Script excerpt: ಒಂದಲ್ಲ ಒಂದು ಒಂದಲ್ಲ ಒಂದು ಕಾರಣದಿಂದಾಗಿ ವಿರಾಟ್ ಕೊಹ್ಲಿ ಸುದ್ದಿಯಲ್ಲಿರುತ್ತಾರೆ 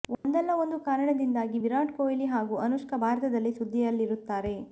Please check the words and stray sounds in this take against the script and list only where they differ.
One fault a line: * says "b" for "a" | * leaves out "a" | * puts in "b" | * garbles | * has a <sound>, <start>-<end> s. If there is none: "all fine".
* has a dropout, 0.1-0.2 s
* leaves out "ಒಂದಲ್ಲ ಒಂದು"
* puts in "ಹಾಗೂ ಅನುಷ್ಕಾ ಭಾರತದಲ್ಲಿ"